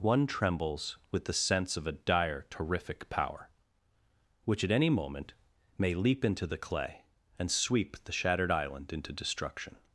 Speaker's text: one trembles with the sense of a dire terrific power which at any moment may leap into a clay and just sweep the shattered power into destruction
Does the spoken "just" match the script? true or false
false